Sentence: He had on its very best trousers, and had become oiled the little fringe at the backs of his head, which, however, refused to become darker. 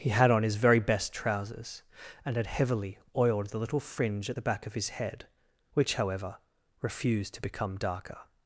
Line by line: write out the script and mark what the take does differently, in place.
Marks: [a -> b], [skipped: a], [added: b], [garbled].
He had on [its -> his] very best trousers, and had [become -> heavily] oiled the little fringe at the [backs -> back] of his head, which, however, refused to become darker.